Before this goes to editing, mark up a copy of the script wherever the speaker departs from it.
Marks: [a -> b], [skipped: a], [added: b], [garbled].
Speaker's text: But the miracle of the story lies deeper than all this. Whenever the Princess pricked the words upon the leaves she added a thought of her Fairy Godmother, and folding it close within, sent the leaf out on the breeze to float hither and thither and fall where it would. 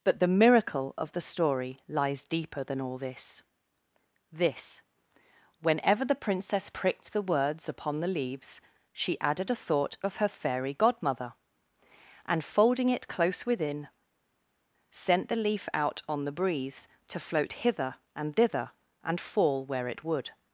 But the miracle of the story lies deeper than all this. [added: this] Whenever the Princess pricked the words upon the leaves she added a thought of her Fairy Godmother, and folding it close within, sent the leaf out on the breeze to float hither and thither and fall where it would.